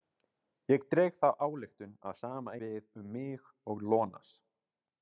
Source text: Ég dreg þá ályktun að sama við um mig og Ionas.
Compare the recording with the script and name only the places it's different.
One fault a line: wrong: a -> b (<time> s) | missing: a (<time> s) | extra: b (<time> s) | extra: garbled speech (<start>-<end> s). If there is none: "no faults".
no faults